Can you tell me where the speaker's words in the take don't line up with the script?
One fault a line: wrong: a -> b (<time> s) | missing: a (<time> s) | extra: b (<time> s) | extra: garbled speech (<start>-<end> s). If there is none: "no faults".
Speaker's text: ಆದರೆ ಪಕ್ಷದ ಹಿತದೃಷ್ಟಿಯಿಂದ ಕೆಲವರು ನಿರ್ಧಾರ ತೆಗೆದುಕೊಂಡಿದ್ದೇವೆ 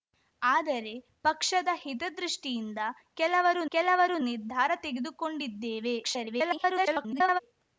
extra: ಕೆಲವರು (3.7 s)
extra: garbled speech (6.0-7.4 s)